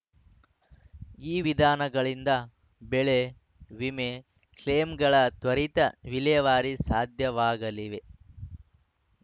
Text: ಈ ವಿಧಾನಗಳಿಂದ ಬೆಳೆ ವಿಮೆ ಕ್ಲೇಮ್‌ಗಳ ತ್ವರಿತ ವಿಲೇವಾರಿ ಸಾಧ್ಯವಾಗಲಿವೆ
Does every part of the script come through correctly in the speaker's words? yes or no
yes